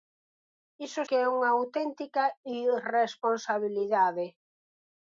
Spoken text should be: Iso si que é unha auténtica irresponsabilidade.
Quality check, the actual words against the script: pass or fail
fail